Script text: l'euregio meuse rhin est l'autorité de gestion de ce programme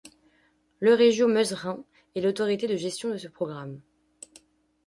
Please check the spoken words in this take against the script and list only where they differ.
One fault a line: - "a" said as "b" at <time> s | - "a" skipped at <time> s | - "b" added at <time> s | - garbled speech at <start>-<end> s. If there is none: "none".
none